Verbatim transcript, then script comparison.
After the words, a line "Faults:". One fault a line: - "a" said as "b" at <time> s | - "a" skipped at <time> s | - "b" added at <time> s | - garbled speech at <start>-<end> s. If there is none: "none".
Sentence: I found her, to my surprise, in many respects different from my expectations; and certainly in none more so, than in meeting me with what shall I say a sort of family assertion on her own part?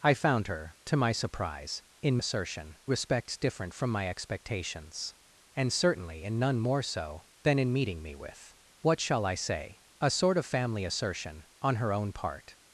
I found her, to my surprise, in assertion respects different from my expectations; and certainly in none more so, than in meeting me with what shall I say a sort of family assertion on her own part?
Faults:
- "many" said as "assertion" at 2.2 s